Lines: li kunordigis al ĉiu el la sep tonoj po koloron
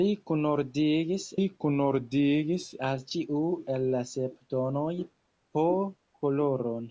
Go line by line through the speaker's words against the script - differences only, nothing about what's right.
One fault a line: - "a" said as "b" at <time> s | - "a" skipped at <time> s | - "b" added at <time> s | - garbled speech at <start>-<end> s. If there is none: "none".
- "li kunordigis" added at 1.3 s